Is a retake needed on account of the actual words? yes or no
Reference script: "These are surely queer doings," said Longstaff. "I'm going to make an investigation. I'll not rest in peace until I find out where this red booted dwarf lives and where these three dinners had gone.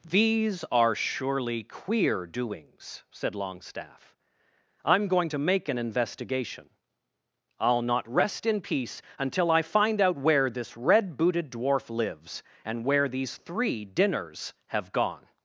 yes